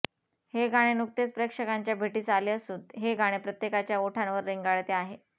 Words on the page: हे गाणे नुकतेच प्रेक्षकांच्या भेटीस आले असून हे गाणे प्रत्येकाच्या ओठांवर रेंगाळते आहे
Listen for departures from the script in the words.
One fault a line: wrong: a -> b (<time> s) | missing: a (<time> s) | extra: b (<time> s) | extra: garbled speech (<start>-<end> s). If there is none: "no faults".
no faults